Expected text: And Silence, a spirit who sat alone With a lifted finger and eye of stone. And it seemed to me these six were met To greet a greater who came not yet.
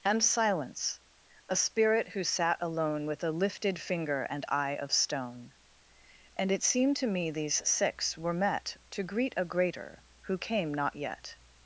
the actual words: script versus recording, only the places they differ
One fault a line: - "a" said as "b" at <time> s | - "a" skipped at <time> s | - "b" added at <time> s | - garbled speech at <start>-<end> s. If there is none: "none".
none